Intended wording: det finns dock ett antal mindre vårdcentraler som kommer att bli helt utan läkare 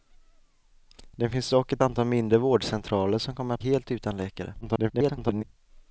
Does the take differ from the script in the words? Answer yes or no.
yes